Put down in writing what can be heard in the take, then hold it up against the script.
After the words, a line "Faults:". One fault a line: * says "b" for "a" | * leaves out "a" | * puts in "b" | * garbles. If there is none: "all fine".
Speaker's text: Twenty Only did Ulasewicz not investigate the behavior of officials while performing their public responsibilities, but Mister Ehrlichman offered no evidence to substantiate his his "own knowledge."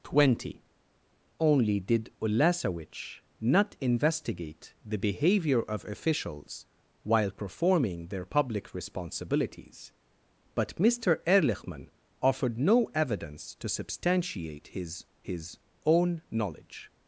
Twenty Only did Ulasewicz not investigate the behavior of officials while performing their public responsibilities, but Mister Ehrlichman offered no evidence to substantiate his his "own knowledge."
Faults:
all fine